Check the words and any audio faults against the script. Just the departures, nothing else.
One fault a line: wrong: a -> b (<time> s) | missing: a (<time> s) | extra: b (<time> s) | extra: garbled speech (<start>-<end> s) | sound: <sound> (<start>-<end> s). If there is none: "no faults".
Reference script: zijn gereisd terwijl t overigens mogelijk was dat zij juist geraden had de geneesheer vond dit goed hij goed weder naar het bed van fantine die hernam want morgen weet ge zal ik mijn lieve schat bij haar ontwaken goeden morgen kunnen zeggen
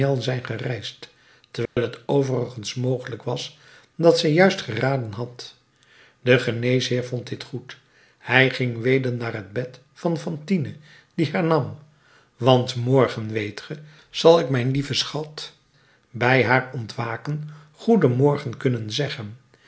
sound: dropout (1.7-1.8 s)
wrong: goed -> ging (8.5 s)